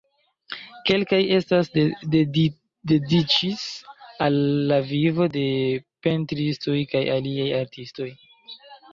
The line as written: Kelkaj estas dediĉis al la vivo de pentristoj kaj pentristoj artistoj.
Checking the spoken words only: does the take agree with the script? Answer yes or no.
no